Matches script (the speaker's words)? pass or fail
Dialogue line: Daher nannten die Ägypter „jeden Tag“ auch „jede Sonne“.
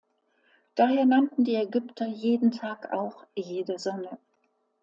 pass